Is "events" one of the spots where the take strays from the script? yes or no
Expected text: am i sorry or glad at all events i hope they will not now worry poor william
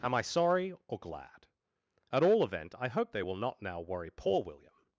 yes